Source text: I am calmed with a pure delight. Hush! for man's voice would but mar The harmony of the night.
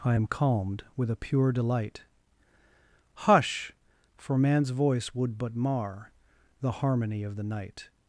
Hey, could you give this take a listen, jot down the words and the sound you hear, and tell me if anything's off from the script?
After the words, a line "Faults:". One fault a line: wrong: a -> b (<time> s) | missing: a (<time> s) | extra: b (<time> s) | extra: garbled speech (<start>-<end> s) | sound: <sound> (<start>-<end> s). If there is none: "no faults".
I am calmed with a pure delight. Hush! for man's voice would but mar The harmony of the night.
Faults:
no faults